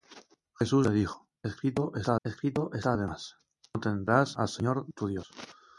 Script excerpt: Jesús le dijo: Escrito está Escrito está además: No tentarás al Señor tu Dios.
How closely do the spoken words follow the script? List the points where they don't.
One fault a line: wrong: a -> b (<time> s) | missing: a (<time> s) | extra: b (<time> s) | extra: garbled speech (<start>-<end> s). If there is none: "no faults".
no faults